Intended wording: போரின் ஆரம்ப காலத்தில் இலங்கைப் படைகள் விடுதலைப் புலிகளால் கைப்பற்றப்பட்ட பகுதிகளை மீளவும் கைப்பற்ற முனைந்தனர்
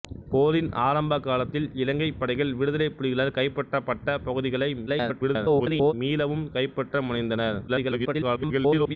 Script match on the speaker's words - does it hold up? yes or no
no